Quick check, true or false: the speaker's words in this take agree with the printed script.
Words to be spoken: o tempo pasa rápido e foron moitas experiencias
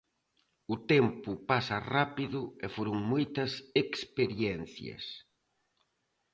true